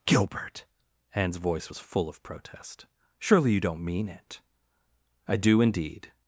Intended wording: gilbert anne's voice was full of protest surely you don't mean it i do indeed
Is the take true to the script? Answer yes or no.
yes